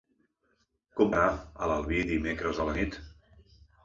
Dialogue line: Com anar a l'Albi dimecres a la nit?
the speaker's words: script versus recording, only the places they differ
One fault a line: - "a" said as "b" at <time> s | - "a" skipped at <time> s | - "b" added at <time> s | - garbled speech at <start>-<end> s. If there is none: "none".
none